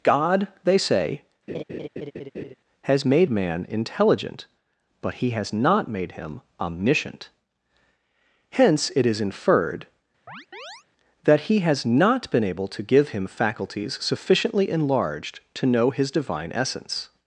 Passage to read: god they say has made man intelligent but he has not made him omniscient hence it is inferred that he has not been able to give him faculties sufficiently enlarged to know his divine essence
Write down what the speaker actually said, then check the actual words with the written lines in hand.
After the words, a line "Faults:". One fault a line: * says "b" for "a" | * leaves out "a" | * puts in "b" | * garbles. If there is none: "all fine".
god they say has made man intelligent but he has not made him omniscient hence it is inferred that he has not been able to give him faculties sufficiently enlarged to know his divine essence
Faults:
all fine